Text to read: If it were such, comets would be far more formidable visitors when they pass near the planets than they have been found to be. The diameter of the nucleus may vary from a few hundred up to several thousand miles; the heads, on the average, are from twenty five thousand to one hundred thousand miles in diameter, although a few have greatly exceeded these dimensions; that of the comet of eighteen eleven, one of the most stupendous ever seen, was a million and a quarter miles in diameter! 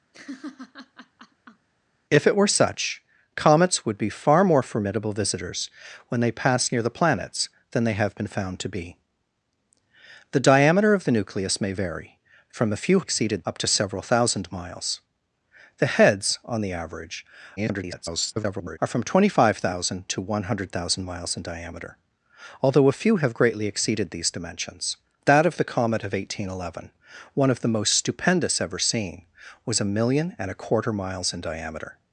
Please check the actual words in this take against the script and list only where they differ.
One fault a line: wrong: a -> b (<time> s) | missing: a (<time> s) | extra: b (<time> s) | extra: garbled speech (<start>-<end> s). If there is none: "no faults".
wrong: hundred -> exceeded (13.0 s)
extra: garbled speech (17.6-18.8 s)